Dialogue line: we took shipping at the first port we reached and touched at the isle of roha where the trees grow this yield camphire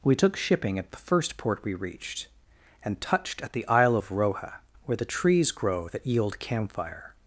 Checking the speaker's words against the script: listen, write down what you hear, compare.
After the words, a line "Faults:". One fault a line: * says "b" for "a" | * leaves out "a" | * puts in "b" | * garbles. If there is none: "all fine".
we took shipping at the first port we reached and touched at the isle of roha where the trees grow that yield camphire
Faults:
* says "that" for "this"